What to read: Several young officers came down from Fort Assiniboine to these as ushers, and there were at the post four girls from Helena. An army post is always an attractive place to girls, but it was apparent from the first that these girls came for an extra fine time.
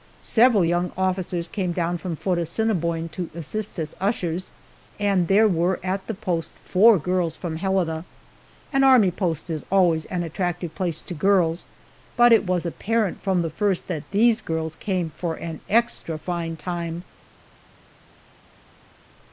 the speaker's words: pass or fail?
fail